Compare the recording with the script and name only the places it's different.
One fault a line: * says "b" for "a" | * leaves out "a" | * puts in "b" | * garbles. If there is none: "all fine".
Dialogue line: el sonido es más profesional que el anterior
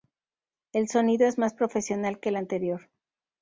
all fine